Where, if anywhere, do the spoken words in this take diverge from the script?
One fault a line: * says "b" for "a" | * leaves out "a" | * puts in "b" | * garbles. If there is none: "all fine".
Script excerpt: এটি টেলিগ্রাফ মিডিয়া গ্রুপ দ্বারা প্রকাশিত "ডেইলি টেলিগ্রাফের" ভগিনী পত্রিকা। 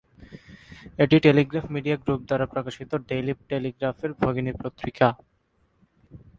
all fine